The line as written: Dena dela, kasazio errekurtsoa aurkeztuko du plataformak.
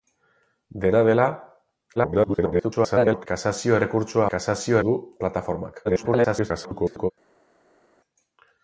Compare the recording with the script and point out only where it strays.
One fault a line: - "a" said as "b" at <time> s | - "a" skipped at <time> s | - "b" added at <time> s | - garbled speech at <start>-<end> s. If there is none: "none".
- garbled speech at 2.0-3.3 s
- "aurkeztuko" said as "kasazio" at 4.3 s
- garbled speech at 5.8-7.1 s